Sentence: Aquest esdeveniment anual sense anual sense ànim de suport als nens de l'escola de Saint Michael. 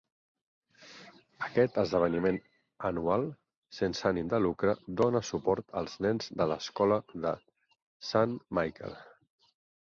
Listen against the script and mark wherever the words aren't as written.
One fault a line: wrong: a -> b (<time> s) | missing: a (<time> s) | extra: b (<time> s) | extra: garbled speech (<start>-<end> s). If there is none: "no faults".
wrong: anual sense ànim de -> ànim de lucre dóna (4.1 s)